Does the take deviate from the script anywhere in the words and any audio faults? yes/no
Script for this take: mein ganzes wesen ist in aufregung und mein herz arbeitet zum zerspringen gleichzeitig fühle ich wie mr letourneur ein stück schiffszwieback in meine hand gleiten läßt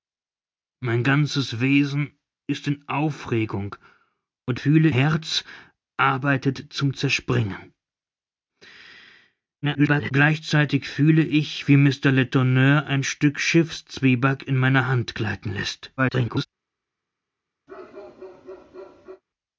yes